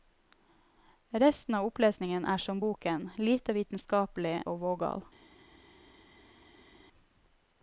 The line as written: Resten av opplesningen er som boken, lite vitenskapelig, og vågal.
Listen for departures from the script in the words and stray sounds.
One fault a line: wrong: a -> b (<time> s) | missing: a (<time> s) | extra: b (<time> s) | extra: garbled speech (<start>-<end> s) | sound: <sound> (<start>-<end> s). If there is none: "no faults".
no faults